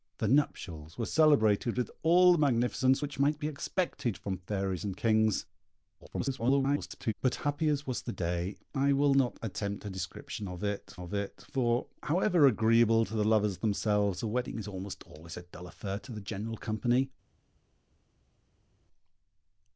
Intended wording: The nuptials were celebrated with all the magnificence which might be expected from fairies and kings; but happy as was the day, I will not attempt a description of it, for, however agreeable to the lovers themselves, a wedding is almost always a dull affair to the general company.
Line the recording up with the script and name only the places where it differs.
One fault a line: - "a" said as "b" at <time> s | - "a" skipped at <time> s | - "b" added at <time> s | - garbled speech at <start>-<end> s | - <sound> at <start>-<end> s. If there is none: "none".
- garbled speech at 6.0-7.1 s
- "of it" added at 11.0 s